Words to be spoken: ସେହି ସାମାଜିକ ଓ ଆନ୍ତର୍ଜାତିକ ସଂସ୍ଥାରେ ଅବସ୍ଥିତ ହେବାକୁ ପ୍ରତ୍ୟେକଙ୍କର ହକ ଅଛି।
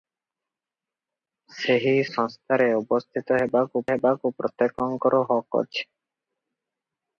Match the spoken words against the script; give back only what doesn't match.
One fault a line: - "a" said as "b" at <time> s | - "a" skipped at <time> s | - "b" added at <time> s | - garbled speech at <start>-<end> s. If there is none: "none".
- "ସାମାଜିକ ଓ ଆନ୍ତର୍ଜାତିକ" skipped at 1.9 s
- "ହେବାକୁ" added at 3.9 s